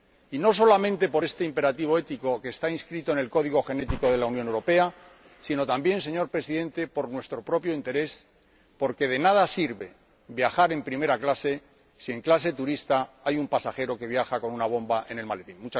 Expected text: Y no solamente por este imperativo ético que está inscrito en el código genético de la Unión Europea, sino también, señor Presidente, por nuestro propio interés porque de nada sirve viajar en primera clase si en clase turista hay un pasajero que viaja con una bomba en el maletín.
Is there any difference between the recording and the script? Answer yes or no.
no